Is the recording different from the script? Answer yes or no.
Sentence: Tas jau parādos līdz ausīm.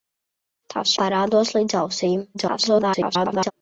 yes